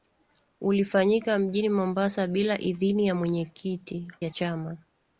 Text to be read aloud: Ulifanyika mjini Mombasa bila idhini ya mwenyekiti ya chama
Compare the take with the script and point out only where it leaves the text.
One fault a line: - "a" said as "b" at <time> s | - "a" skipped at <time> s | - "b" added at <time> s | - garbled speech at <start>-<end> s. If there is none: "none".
none